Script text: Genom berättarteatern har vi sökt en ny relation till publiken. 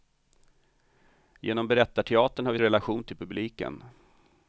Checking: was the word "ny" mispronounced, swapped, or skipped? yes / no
yes